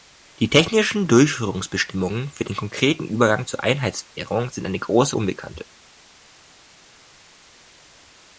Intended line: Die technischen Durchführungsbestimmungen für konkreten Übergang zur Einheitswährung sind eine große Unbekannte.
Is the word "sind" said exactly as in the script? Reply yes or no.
yes